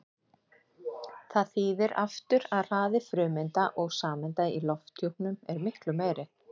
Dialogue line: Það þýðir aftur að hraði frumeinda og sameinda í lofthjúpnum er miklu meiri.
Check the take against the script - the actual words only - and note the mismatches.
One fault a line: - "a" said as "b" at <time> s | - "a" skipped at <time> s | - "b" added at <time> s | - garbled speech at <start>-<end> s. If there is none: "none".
none